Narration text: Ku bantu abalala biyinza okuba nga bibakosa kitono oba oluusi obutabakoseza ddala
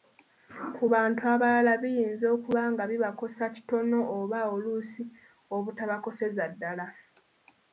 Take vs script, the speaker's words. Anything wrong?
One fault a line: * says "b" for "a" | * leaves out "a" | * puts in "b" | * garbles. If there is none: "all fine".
all fine